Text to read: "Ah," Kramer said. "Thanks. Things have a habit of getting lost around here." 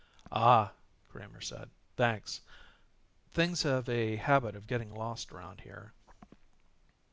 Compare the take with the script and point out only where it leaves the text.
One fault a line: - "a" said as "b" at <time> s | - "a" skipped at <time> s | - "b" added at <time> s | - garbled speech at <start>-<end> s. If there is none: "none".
none